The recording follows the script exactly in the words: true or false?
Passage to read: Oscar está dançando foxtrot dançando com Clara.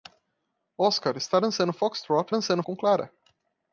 true